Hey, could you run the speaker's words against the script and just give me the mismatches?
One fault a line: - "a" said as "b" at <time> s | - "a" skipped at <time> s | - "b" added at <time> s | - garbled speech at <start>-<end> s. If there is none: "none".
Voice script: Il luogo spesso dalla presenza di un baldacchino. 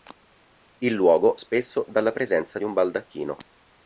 none